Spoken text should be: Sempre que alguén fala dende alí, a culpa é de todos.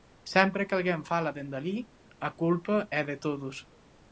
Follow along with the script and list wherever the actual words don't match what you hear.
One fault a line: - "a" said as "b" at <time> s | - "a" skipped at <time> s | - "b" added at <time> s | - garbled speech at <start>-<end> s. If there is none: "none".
none